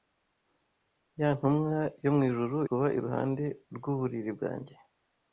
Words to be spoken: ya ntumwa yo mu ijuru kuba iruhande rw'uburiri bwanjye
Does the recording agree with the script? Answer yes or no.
yes